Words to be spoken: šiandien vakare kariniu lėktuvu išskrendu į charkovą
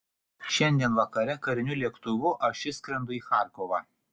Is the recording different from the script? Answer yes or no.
yes